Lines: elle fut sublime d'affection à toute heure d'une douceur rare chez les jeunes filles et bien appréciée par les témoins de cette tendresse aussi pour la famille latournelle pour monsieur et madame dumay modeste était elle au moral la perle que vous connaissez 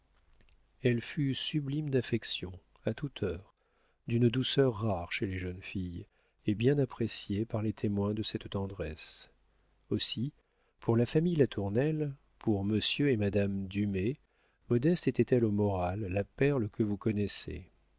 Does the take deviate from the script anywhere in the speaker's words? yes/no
no